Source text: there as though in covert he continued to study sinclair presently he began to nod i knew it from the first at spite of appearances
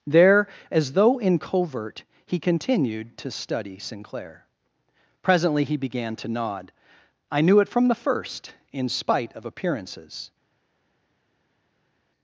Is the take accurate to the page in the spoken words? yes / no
no